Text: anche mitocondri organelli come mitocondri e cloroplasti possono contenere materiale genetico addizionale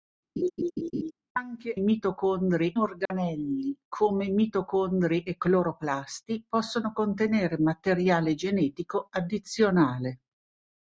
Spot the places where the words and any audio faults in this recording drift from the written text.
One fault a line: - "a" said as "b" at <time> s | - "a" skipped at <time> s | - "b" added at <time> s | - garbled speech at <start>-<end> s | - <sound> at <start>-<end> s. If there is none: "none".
- laugh at 0.4-1.1 s
- dropout at 3.1-3.1 s